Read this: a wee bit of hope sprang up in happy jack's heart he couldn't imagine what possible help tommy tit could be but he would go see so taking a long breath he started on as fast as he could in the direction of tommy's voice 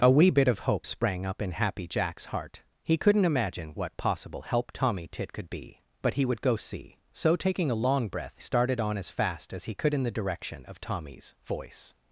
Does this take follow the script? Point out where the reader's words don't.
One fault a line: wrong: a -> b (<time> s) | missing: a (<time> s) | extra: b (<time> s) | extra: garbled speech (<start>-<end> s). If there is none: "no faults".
missing: he (8.4 s)